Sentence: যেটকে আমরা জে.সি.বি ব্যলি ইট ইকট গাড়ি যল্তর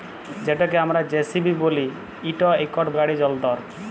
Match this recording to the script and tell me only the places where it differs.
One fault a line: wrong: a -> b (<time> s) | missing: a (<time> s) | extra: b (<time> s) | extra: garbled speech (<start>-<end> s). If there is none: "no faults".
no faults